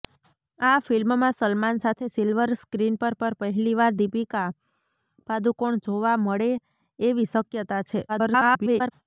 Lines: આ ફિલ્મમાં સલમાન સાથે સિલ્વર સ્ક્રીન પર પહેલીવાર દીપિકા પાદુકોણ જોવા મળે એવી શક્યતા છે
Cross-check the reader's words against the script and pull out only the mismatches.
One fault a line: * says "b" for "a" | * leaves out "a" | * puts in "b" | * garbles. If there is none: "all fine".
* puts in "પર"
* garbles